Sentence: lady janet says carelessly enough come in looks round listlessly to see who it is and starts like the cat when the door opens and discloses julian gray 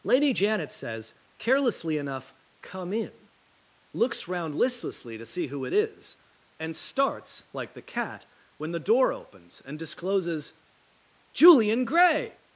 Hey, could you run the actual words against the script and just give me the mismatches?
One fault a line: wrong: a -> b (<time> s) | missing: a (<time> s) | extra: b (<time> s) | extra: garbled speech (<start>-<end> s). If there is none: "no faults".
no faults